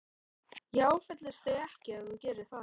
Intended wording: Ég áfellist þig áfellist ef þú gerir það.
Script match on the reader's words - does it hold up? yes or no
no